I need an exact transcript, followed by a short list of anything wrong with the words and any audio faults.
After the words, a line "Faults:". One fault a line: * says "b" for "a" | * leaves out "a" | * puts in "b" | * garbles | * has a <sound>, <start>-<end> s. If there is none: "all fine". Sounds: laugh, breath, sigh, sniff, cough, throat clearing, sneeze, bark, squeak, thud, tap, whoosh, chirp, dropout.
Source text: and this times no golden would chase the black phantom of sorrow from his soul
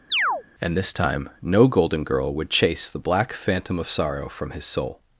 and this time no golden girl would chase the black phantom of sorrow from his soul
Faults:
* has a chirp, 0.1-0.4 s
* says "time" for "times"
* puts in "girl"